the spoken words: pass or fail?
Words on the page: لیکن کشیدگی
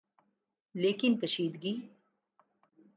pass